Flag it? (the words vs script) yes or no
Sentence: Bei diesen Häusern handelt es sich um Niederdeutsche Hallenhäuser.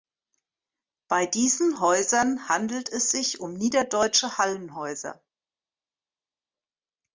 no